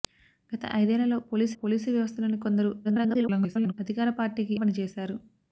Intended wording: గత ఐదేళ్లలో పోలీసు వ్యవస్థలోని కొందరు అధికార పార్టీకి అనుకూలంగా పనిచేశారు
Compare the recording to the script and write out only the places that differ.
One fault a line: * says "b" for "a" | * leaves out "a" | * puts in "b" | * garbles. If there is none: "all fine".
* puts in "పోలీసు"
* garbles
* leaves out "అనుకూలంగా"